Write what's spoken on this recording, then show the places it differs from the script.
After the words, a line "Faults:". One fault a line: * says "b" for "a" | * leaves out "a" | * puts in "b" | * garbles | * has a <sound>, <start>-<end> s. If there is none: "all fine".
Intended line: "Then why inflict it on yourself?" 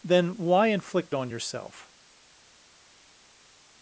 "Then why inflict on yourself?"
Faults:
* leaves out "it"